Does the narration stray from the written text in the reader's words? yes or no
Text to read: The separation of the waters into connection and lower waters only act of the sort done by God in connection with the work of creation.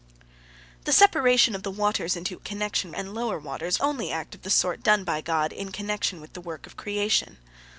no